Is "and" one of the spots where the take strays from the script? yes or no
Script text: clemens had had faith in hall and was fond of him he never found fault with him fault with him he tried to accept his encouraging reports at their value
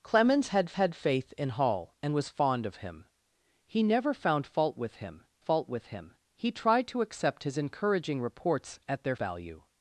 no